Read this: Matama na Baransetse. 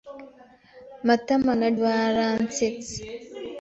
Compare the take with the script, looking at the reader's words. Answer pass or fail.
pass